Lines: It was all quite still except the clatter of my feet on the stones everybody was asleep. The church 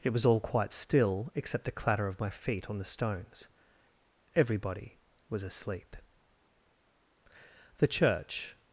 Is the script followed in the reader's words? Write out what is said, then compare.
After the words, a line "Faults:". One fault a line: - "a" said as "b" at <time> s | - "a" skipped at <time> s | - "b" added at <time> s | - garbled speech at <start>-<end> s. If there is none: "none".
It was all quite still except the clatter of my feet on the stones everybody was asleep. The church
Faults:
none